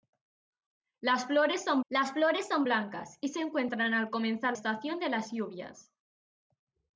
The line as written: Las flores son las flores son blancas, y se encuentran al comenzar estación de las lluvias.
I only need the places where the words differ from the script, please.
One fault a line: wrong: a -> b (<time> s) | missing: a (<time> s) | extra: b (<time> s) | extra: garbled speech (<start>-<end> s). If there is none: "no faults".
no faults